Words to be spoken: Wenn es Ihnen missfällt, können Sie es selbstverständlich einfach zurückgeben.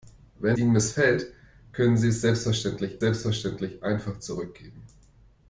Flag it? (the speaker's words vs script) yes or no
yes